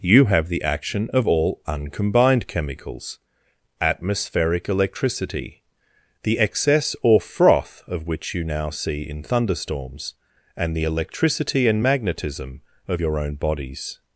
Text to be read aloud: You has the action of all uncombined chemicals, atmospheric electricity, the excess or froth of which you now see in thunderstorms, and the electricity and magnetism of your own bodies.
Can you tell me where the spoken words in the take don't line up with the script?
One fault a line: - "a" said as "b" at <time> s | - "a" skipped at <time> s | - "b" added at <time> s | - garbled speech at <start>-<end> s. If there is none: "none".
- "has" said as "have" at 0.2 s